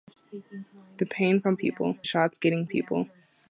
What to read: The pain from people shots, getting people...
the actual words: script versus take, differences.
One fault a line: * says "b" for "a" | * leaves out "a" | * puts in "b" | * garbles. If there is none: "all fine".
all fine